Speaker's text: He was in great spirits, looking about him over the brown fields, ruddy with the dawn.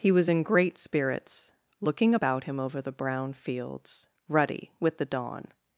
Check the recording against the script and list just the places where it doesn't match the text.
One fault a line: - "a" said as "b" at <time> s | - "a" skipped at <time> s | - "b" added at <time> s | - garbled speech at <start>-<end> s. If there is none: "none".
none